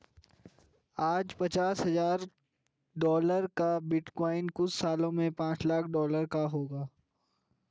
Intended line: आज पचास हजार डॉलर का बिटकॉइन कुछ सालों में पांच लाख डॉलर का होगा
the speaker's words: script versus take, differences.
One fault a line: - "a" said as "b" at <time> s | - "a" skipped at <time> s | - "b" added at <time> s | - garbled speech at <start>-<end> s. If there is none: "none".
none